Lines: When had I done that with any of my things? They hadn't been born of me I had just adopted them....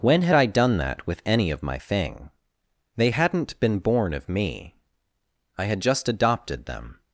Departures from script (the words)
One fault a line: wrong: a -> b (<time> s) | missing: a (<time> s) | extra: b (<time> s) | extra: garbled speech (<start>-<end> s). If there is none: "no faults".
wrong: things -> thing (1.8 s)